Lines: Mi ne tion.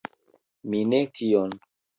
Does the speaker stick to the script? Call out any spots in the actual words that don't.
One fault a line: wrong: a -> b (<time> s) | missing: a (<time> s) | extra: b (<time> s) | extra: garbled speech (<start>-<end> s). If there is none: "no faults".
no faults